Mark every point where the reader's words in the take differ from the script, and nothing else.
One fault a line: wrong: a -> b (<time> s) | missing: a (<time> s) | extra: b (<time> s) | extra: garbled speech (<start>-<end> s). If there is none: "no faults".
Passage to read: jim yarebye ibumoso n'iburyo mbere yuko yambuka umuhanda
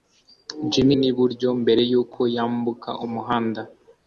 missing: yarebye ibumoso (0.9 s)